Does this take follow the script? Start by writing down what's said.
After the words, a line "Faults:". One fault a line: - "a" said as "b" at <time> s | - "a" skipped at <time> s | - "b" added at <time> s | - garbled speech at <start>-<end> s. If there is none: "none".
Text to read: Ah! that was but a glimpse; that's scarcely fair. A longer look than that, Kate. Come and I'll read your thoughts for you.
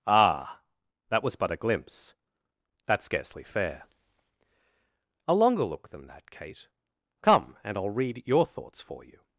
Ah! that was but a glimpse; that's scarcely fair. A longer look than that, Kate. Come and I'll read your thoughts for you.
Faults:
none